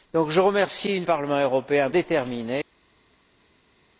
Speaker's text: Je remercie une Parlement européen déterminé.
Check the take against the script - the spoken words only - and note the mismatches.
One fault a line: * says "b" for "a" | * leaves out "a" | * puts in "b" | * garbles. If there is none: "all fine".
all fine